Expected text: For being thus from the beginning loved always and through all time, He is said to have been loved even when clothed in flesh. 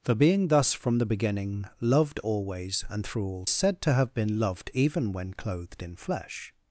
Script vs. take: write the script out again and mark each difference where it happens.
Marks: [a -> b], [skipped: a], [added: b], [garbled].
For being thus from the beginning loved always and through all [skipped: time, He is] said to have been loved even when clothed in flesh.